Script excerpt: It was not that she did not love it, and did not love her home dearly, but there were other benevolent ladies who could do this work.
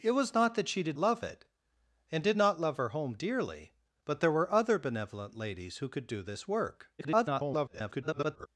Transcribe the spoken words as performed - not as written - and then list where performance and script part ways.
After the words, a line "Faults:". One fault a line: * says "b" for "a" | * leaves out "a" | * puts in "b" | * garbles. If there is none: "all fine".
It was not that she did love it, and did not love her home dearly, but there were other benevolent ladies who could do this work. [garbled]
Faults:
* leaves out "not"
* garbles